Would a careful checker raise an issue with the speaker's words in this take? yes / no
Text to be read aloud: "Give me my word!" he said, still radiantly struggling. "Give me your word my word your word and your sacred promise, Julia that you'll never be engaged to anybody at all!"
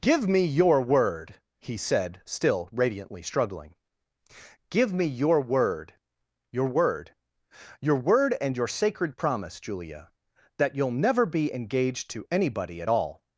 yes